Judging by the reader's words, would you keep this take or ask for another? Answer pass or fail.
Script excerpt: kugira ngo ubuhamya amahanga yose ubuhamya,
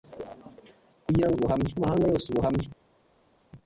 pass